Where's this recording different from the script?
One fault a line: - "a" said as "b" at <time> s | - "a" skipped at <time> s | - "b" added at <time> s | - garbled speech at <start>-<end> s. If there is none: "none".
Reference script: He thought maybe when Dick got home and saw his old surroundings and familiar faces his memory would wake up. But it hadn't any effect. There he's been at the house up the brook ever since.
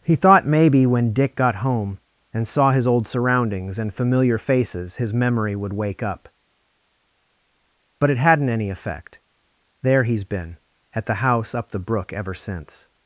none